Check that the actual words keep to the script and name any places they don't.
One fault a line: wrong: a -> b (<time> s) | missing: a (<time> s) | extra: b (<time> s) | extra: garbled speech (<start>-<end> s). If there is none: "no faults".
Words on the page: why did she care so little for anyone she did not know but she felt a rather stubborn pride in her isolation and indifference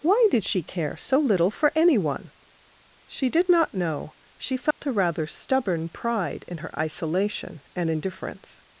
missing: but (4.1 s)